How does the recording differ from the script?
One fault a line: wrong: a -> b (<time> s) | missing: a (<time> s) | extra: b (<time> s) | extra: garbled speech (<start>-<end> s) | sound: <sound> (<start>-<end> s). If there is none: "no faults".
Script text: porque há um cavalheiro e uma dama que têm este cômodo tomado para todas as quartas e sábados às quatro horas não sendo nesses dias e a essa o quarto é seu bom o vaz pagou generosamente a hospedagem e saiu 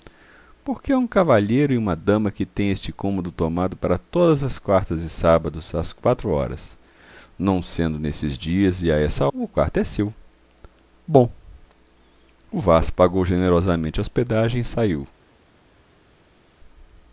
no faults